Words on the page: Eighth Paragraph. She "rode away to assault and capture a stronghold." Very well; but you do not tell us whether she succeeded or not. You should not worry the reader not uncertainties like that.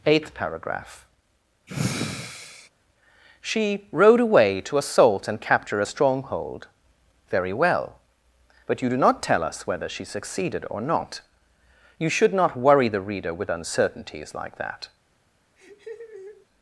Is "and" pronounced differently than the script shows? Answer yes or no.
no